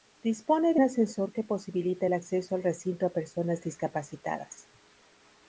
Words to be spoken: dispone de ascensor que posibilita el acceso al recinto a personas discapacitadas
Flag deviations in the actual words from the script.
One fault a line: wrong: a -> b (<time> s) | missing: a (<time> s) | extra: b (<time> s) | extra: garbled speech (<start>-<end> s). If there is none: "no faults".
no faults